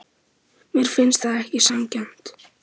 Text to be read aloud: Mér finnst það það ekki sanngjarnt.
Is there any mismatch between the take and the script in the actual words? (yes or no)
yes